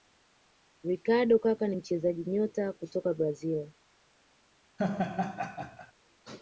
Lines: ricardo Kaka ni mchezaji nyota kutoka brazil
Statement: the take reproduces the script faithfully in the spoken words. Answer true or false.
true